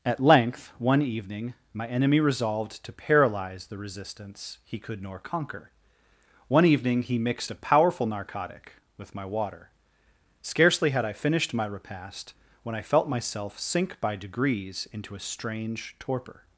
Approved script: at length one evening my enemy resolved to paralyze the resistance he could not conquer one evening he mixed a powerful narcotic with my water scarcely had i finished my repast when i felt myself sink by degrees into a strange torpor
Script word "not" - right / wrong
wrong